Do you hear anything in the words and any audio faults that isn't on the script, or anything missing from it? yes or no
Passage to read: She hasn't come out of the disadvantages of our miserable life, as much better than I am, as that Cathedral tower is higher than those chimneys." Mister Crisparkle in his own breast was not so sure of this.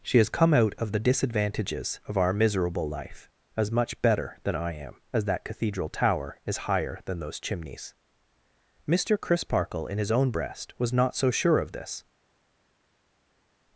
yes